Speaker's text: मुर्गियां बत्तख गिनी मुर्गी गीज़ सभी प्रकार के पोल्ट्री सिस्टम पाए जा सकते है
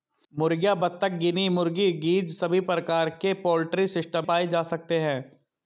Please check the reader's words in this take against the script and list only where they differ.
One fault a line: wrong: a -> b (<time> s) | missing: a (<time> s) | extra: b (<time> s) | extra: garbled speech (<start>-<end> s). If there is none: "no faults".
no faults